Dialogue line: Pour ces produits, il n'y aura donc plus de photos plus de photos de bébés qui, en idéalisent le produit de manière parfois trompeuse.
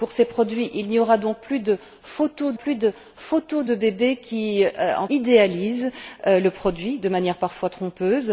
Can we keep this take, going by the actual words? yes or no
yes